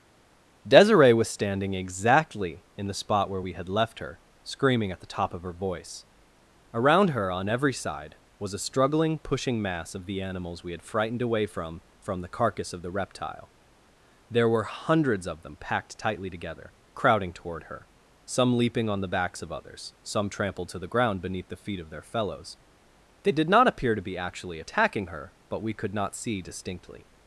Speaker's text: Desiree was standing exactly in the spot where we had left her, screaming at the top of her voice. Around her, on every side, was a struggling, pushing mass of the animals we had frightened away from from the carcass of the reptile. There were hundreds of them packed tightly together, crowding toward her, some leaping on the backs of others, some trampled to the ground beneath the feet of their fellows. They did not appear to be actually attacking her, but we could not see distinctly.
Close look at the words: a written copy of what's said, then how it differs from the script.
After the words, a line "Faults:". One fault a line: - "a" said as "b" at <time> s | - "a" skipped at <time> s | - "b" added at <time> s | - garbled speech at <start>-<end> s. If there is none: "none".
Desiree was standing exactly in the spot where we had left her, screaming at the top of her voice. Around her, on every side, was a struggling, pushing mass of the animals we had frightened away from from the carcass of the reptile. There were hundreds of them packed tightly together, crowding toward her, some leaping on the backs of others, some trampled to the ground beneath the feet of their fellows. They did not appear to be actually attacking her, but we could not see distinctly.
Faults:
none